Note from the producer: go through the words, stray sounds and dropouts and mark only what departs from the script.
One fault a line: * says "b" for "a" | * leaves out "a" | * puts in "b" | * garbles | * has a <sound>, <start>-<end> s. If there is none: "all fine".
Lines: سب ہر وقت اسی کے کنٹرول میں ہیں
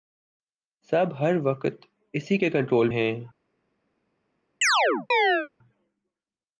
* leaves out "میں"
* has a chirp, 4.6-5.5 s